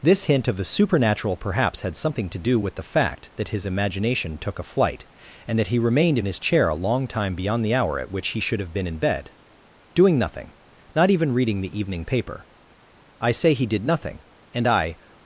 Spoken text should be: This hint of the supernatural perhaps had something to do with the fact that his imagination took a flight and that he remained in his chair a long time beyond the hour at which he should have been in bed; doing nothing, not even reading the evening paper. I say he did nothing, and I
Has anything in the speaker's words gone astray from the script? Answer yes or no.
no